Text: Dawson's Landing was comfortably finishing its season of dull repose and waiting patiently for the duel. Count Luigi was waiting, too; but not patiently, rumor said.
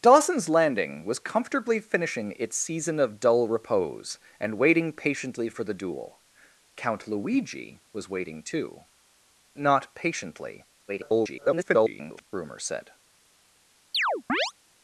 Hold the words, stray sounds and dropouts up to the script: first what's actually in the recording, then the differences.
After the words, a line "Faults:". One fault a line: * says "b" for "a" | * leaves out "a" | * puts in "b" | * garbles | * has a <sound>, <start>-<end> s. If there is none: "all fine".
Dawson's Landing was comfortably finishing its season of dull repose and waiting patiently for the duel. Count Luigi was waiting, too; not patiently, [garbled] rumor said.
Faults:
* leaves out "but"
* garbles
* has a chirp, 13.9-14.5 s